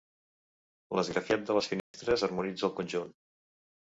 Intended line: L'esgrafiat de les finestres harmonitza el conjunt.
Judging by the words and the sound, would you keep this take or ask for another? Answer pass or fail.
fail